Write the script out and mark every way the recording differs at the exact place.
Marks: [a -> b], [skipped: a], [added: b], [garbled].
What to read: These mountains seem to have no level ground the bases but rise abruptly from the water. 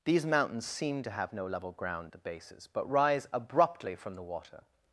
These mountains seem to have no level ground the bases but rise abruptly from the water.